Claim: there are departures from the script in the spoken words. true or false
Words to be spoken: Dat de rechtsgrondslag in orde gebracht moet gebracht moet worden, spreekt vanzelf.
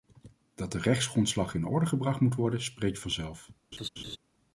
true